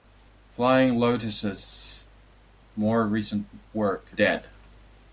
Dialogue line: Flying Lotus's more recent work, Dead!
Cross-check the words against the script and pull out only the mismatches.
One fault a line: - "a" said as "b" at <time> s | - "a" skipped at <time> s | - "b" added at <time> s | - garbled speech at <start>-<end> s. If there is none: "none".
none